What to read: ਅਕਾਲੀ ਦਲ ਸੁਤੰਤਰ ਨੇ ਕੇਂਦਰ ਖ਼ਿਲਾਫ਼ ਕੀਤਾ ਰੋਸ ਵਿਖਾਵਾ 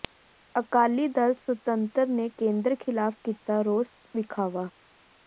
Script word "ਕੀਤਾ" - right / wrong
right